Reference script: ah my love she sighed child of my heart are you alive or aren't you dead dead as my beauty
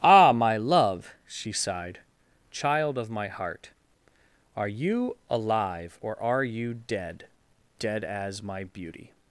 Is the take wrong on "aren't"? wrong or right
wrong